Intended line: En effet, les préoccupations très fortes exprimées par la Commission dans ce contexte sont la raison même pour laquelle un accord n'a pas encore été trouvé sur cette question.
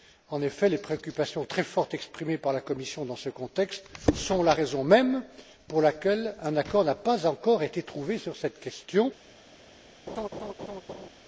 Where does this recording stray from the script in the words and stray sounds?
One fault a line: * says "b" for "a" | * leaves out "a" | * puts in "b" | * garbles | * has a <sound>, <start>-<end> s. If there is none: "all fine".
* has a laugh, 10.1-11.1 s